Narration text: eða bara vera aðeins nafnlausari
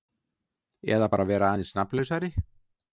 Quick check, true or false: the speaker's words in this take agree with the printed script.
true